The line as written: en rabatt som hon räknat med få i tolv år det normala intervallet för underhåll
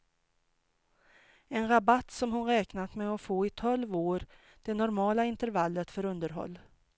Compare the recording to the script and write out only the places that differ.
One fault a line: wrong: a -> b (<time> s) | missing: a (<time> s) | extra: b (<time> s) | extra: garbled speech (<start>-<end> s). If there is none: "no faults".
extra: att (3.1 s)